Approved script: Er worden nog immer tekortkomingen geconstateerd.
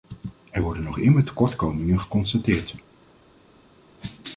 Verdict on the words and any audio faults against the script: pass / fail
pass